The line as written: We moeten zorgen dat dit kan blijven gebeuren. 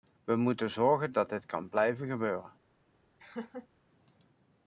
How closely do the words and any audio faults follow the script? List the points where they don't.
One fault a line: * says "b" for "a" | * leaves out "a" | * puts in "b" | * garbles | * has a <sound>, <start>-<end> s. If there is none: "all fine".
* has a laugh, 3.2-3.7 s